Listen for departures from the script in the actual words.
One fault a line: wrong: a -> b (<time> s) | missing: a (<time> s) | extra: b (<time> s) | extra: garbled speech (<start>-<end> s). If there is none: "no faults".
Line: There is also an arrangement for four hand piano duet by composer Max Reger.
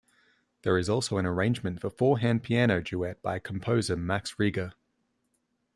no faults